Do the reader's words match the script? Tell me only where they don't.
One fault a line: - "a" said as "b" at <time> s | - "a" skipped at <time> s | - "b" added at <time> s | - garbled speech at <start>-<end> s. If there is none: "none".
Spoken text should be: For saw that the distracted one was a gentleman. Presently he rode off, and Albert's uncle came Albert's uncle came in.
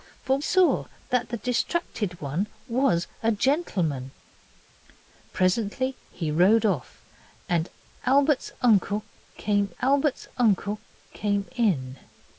none